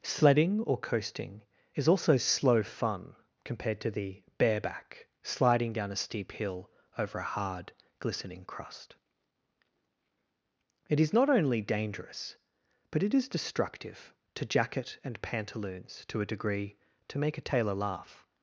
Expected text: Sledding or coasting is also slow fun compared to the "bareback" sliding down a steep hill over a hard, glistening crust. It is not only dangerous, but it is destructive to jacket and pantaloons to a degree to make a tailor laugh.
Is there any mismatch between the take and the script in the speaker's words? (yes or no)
no